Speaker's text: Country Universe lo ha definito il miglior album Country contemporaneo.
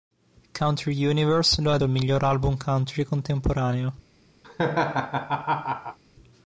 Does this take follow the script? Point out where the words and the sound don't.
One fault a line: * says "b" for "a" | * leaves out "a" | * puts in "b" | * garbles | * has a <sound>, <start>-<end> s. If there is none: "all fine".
* leaves out "definito"
* has a laugh, 4.4-6.0 s